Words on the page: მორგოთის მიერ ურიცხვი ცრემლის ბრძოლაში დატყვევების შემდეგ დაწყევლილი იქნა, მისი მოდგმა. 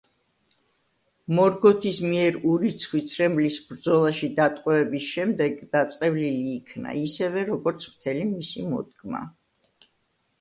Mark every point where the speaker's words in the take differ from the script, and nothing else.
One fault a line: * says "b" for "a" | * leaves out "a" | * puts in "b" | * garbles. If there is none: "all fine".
* puts in "ისევე როგორც მთელი"